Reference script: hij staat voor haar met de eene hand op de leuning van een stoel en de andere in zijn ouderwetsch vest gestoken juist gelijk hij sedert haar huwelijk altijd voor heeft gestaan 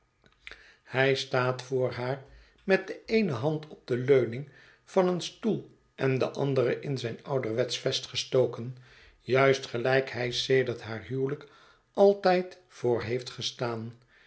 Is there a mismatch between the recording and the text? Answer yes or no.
no